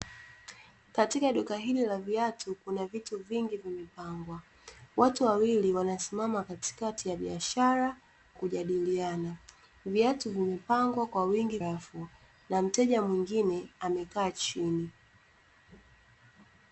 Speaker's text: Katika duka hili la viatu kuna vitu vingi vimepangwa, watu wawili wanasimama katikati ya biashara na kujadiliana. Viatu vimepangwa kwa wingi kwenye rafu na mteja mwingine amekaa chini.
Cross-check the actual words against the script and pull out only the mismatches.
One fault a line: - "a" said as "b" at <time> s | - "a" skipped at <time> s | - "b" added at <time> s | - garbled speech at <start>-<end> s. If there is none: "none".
- "na" skipped at 8.0 s
- "kwenye" skipped at 11.6 s